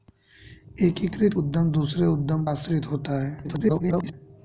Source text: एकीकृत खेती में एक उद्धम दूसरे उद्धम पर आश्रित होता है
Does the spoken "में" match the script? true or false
false